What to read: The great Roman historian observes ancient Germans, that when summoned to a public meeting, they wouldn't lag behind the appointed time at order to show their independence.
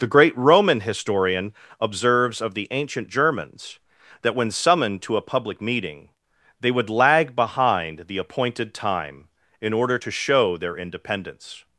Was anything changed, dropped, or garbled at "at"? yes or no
yes